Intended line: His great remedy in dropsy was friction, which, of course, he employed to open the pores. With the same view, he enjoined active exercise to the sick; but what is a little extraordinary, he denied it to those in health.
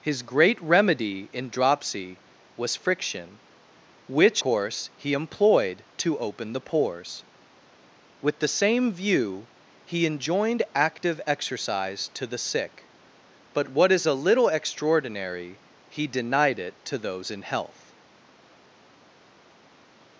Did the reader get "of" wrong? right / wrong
wrong